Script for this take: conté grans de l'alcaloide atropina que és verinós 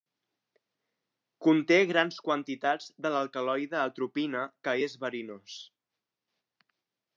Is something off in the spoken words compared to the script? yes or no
yes